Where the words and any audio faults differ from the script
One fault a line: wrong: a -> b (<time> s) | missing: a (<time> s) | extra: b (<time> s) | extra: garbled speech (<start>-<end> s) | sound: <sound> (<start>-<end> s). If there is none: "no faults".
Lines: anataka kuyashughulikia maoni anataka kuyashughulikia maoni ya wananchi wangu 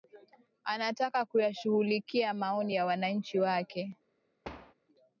missing: anataka kuyashughulikia maoni (2.8 s)
wrong: wangu -> wake (3.4 s)
sound: thud (4.4-4.7 s)